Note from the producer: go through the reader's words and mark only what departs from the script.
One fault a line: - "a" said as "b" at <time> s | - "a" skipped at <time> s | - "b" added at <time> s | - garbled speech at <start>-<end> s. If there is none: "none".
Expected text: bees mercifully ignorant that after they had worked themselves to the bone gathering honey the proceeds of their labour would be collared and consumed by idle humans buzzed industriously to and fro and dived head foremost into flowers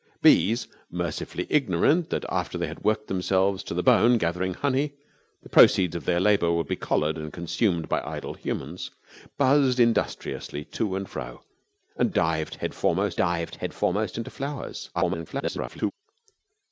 - "dived head foremost" added at 13.2 s
- garbled speech at 14.9-15.9 s